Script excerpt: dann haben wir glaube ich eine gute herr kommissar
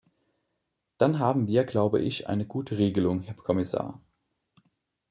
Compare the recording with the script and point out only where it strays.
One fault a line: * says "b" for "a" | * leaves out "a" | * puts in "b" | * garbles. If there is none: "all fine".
* puts in "regelung"